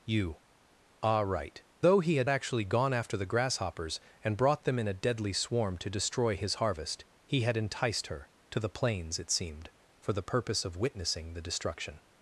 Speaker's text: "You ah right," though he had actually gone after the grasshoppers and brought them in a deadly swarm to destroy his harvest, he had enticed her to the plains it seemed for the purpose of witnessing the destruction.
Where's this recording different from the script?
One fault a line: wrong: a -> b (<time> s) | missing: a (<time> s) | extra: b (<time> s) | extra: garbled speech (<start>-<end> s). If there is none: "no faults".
no faults